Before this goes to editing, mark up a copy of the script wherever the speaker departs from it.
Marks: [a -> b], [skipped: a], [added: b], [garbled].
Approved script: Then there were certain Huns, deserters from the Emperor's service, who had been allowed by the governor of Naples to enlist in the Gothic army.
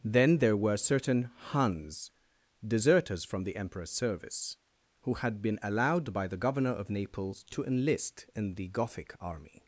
Then there were certain Huns, deserters from the Emperor's service, who had been allowed by the governor of Naples to enlist in the Gothic army.